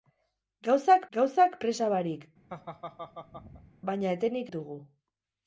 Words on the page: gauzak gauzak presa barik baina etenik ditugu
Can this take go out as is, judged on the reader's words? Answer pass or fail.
pass